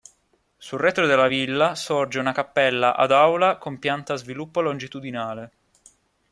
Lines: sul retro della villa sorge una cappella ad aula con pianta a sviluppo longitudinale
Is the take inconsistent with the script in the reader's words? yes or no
no